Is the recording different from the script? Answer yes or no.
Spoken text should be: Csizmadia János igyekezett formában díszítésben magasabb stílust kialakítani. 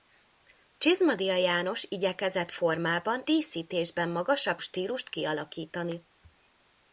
no